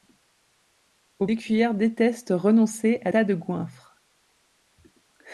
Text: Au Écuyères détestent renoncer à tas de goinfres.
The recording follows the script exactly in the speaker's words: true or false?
true